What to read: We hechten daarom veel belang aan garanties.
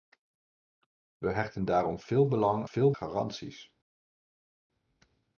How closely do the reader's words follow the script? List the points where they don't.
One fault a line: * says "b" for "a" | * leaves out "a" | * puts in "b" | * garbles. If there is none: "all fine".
* says "veel" for "aan"